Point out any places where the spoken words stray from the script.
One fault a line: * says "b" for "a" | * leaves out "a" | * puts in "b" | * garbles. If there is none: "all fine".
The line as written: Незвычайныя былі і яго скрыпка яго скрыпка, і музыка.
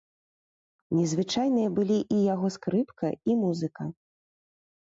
* leaves out "яго скрыпка"